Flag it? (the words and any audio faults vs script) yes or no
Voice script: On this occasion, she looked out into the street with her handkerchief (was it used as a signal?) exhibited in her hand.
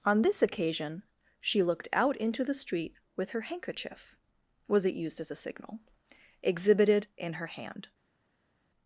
no